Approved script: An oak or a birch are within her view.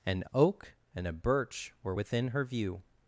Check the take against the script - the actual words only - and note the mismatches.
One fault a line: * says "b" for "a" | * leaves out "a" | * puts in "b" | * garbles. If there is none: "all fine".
* says "and" for "or"
* says "were" for "are"